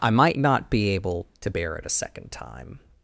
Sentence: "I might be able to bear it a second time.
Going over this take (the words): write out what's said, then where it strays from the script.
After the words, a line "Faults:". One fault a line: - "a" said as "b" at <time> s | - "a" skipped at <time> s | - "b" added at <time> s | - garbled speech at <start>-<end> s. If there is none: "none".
"I might not be able to bear it a second time.
Faults:
- "not" added at 0.4 s